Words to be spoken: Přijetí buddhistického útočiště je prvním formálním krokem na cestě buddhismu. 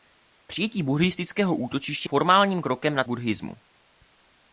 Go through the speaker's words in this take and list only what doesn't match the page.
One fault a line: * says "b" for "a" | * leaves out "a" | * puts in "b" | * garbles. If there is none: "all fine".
* leaves out "je prvním"
* leaves out "cestě"